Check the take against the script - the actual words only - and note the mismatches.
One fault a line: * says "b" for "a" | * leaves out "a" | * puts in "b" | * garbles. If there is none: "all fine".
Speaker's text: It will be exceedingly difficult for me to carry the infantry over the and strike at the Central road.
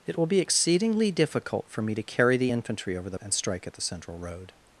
all fine